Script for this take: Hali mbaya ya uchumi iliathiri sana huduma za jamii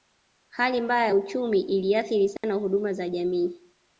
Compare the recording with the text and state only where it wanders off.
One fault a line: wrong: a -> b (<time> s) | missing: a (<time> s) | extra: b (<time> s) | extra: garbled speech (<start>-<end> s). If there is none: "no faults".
no faults